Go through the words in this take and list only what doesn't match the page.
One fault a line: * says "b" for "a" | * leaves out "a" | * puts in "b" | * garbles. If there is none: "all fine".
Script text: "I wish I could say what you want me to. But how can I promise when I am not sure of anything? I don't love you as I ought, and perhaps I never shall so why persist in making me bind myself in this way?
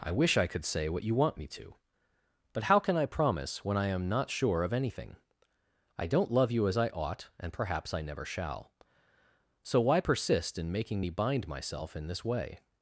all fine